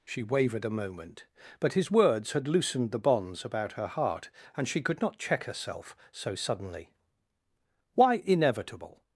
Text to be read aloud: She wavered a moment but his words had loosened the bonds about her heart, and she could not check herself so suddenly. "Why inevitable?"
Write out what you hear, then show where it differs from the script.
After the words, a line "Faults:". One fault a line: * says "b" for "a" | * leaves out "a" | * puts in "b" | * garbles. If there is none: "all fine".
She wavered a moment but his words had loosened the bonds about her heart, and she could not check herself so suddenly. "Why inevitable?"
Faults:
all fine